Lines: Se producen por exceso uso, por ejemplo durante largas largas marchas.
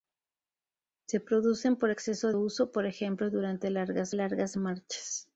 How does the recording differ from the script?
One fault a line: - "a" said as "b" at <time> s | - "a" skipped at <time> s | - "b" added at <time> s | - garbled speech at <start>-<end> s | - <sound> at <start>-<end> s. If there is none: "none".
none